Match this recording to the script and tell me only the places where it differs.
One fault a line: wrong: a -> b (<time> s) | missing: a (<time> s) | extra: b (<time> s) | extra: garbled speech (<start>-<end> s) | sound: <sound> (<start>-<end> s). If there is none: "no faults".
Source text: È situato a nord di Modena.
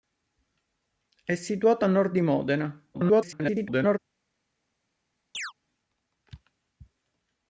extra: garbled speech (2.9-4.0 s)
sound: chirp (5.3-5.5 s)